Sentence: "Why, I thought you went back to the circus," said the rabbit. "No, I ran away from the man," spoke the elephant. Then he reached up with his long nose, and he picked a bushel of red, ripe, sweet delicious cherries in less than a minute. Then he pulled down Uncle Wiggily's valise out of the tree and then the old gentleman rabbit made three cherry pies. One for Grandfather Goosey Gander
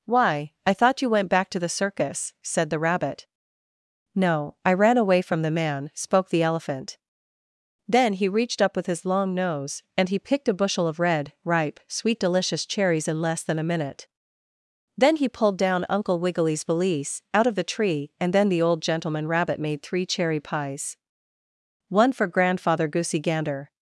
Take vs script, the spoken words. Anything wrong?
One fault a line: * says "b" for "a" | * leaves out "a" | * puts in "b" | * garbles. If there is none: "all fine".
all fine